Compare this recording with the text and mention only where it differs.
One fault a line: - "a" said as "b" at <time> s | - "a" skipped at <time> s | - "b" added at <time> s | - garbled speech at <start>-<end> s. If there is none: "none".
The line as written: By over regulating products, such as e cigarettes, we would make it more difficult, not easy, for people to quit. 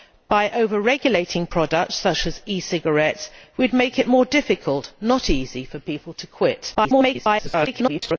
- garbled speech at 6.7-8.2 s